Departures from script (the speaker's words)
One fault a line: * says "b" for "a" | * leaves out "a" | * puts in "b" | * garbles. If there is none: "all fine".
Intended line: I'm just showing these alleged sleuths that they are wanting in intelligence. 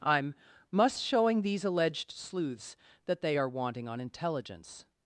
* says "must" for "just"
* says "on" for "in"